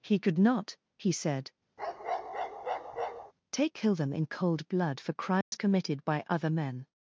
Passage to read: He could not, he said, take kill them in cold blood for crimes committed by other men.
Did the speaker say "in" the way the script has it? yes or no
yes